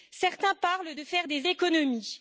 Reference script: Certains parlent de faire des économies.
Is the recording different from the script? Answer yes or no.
no